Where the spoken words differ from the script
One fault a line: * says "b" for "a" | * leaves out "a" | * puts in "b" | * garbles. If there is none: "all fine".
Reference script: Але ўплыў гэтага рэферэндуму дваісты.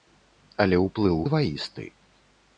* leaves out "гэтага рэферэндуму"